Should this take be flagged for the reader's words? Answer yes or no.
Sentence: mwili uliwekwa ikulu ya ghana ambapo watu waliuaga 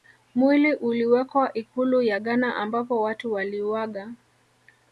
no